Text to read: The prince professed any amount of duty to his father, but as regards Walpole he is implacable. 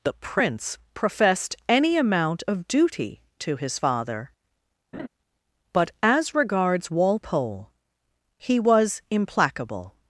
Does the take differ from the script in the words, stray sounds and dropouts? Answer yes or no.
yes